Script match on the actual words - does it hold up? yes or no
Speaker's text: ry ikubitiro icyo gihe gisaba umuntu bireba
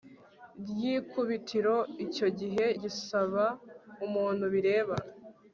yes